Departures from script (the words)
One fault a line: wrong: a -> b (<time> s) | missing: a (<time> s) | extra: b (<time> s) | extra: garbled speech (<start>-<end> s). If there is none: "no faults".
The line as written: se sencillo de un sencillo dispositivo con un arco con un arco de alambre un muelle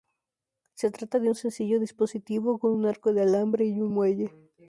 wrong: sencillo -> trata (0.9 s)
missing: con un arco (3.1 s)
extra: y (3.6 s)